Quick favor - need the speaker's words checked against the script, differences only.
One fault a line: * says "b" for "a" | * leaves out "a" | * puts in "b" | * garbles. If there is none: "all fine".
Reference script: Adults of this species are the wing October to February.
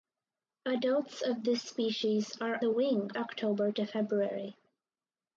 all fine